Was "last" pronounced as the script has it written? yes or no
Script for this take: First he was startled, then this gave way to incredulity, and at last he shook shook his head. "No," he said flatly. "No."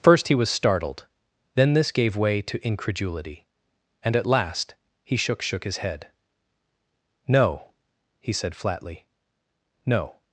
yes